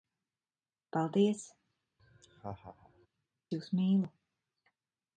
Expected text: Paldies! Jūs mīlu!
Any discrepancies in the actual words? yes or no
no